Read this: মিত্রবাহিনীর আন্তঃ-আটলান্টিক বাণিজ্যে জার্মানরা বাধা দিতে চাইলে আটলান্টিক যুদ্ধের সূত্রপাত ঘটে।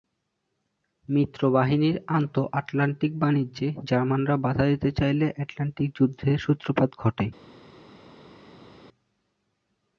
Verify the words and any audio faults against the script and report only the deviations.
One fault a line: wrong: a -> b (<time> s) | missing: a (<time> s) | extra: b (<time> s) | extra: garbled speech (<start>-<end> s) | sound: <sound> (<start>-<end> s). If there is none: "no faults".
no faults